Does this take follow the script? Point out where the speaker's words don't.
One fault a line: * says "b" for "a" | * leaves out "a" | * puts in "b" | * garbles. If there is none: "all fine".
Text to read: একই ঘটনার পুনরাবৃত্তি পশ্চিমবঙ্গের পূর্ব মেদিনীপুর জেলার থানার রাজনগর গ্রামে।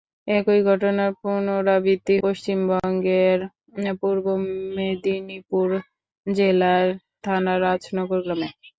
all fine